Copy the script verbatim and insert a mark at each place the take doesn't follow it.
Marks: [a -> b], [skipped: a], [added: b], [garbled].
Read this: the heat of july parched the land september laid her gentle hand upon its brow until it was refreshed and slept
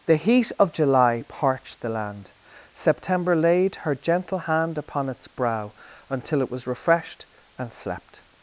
the heat of july parched the land september laid her gentle hand upon its brow until it was refreshed and slept